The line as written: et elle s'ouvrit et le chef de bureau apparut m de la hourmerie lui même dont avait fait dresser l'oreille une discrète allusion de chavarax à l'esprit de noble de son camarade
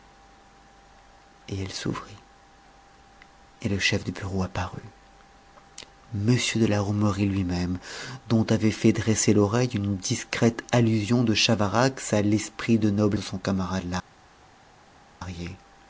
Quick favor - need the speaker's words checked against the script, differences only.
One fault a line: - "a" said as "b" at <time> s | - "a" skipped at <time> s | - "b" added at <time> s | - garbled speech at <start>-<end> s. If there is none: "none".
none